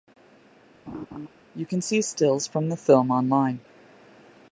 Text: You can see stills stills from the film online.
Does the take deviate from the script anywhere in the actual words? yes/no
yes